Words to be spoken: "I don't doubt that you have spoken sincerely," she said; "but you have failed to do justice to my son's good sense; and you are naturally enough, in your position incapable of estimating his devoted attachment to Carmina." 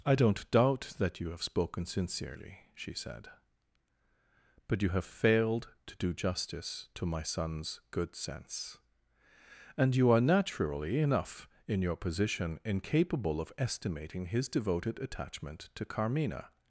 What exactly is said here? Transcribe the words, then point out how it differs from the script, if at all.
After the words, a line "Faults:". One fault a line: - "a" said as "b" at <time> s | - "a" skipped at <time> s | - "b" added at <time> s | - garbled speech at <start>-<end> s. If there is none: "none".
"I don't doubt that you have spoken sincerely," she said; "but you have failed to do justice to my son's good sense; and you are naturally enough, in your position incapable of estimating his devoted attachment to Carmina."
Faults:
none